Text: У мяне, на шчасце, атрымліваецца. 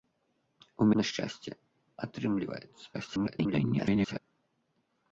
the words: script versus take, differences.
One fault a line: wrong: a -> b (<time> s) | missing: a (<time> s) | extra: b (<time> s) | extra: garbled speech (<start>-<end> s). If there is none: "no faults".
missing: мяне (0.9 s)
extra: garbled speech (2.9-4.2 s)